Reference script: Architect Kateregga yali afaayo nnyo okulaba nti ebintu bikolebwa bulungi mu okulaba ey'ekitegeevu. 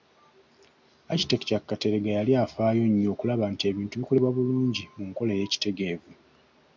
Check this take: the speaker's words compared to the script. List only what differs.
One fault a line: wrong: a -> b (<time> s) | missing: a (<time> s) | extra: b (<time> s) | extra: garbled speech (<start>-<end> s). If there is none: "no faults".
wrong: okulaba -> nkola (5.1 s)